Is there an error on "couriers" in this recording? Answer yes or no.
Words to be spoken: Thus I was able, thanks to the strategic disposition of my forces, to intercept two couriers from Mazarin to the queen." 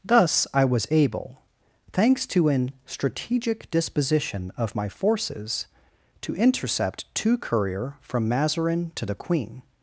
yes